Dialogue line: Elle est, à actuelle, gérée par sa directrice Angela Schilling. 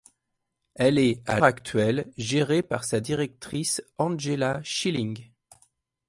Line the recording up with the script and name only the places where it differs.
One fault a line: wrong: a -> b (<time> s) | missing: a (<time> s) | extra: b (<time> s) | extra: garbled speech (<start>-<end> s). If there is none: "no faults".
no faults